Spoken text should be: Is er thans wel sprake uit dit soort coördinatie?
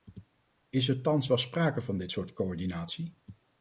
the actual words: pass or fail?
fail